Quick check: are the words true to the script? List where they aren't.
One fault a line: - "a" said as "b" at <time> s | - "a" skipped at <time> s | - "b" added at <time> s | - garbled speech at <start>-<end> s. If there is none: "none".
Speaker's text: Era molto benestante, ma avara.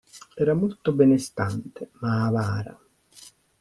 none